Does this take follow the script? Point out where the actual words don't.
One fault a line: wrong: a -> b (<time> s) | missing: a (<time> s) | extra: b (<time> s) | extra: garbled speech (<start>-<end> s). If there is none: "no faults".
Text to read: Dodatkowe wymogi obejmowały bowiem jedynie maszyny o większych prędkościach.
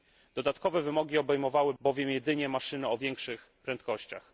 no faults